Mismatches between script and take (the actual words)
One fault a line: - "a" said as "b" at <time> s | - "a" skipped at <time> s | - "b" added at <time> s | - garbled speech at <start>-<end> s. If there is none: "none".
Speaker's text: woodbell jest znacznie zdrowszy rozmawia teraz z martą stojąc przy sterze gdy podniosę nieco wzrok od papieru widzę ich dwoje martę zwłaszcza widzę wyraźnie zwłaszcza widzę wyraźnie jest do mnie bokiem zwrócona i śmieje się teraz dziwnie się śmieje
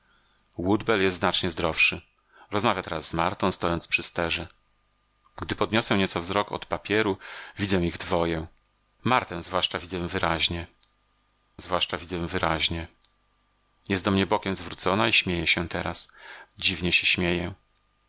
none